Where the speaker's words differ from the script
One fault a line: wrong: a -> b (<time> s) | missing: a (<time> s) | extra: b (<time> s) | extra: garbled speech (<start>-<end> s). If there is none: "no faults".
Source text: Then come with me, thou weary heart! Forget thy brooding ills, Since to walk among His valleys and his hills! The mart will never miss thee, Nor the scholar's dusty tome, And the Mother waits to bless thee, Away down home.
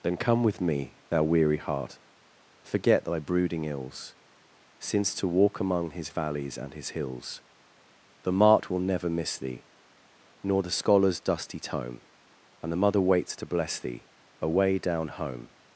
no faults